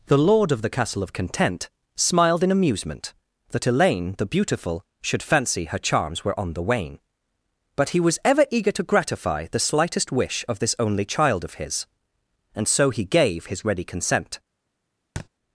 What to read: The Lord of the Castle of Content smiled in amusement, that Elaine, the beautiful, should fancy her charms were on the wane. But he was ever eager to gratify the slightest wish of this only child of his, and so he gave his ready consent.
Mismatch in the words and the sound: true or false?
true